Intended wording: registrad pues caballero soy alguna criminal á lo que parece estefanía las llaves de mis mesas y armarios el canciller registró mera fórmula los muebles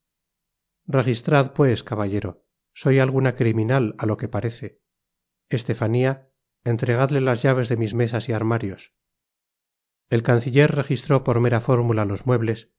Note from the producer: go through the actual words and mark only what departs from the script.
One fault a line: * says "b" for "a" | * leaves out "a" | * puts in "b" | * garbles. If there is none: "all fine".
* puts in "entregadle"
* puts in "por"